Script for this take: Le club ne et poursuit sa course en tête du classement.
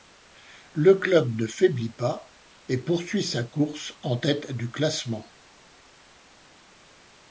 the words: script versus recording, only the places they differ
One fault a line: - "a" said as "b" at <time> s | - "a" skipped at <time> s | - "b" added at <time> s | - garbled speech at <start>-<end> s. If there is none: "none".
- "faiblit pas" added at 1.4 s